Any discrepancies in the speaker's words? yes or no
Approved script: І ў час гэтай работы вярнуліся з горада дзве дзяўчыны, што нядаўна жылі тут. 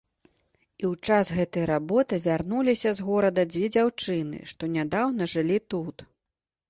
no